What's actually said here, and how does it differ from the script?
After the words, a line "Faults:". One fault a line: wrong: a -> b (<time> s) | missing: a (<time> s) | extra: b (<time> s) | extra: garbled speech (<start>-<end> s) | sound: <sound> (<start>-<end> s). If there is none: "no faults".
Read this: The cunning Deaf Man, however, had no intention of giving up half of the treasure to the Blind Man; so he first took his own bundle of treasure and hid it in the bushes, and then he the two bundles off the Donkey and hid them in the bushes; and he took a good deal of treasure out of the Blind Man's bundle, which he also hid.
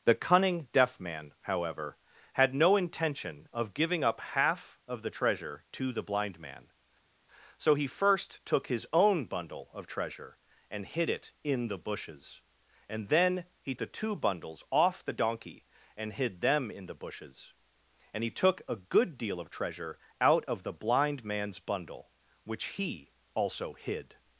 The cunning Deaf Man, however, had no intention of giving up half of the treasure to the Blind Man; so he first took his own bundle of treasure and hid it in the bushes, and then he the two bundles off the Donkey and hid them in the bushes; and he took a good deal of treasure out of the Blind Man's bundle, which he also hid.
Faults:
no faults